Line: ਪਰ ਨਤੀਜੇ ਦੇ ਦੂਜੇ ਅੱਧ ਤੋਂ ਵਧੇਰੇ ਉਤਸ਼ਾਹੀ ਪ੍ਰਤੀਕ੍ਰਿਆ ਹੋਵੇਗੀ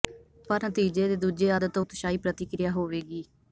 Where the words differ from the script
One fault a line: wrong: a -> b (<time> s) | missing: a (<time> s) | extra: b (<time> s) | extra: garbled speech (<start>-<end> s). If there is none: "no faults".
missing: ਵਧੇਰੇ (1.8 s)